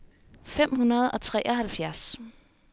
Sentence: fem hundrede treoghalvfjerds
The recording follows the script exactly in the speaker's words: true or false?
false